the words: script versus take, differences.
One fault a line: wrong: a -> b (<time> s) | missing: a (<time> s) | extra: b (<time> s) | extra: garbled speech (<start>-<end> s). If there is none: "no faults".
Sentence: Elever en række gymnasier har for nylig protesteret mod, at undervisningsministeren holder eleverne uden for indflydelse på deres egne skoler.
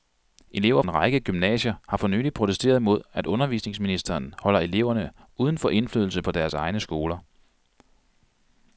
no faults